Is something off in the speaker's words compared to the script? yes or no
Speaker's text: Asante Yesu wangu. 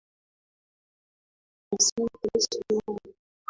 no